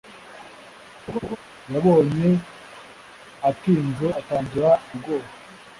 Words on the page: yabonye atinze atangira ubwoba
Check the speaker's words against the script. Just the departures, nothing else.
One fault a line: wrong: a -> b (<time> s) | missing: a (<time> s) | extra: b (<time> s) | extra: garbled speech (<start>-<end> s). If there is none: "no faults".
no faults